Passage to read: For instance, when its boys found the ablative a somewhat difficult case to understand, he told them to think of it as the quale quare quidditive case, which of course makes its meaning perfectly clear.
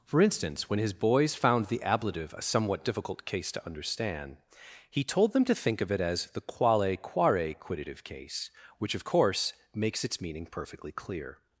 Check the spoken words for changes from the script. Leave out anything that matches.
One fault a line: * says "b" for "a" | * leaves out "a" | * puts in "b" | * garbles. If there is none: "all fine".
* says "his" for "its"